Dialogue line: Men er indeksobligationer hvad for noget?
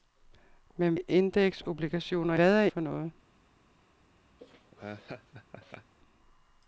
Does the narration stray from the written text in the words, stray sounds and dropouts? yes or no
yes